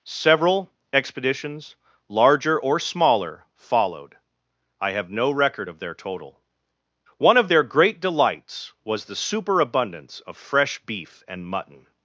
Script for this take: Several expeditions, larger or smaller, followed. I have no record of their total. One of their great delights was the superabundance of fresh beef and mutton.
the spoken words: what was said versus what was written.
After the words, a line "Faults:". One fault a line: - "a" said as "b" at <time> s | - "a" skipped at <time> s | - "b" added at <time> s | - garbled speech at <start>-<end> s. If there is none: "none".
Several expeditions, larger or smaller, followed. I have no record of their total. One of their great delights was the superabundance of fresh beef and mutton.
Faults:
none